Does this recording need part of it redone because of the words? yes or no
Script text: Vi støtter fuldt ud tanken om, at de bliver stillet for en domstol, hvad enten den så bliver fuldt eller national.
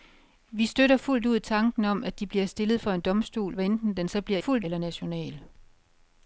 no